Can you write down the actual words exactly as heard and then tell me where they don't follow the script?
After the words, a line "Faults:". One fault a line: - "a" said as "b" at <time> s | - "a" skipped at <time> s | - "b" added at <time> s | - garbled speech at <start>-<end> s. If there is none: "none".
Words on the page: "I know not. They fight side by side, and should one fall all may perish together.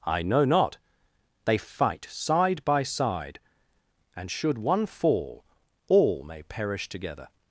"I know not. They fight side by side, and should one fall all may perish together.
Faults:
none